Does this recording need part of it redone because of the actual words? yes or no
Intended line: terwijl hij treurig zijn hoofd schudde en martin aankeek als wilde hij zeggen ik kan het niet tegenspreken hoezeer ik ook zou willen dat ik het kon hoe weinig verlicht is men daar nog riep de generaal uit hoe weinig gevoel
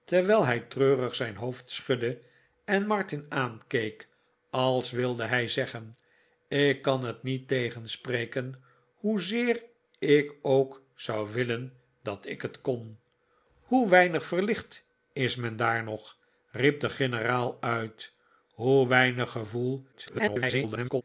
yes